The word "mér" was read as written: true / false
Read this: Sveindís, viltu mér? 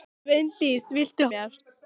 true